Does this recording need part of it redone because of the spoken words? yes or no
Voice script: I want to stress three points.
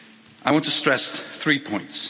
no